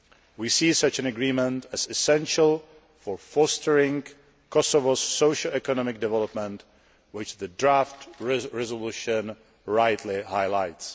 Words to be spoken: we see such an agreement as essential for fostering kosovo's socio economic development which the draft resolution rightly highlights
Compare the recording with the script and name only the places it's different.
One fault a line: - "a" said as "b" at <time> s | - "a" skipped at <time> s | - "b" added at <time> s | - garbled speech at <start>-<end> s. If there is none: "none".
none